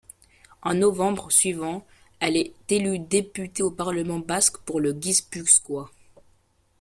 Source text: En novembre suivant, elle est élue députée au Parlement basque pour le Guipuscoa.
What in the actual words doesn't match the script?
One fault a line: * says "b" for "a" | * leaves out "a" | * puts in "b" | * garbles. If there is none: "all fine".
all fine